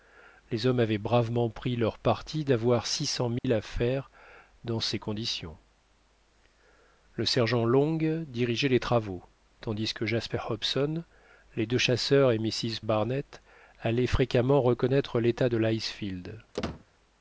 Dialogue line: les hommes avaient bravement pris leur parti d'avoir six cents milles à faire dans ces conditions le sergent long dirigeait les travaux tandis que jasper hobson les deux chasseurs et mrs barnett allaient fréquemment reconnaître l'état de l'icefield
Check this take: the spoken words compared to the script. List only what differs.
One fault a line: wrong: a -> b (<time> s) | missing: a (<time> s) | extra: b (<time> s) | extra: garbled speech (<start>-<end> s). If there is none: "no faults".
no faults